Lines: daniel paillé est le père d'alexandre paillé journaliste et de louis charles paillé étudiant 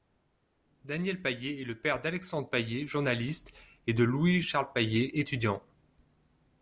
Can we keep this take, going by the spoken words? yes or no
yes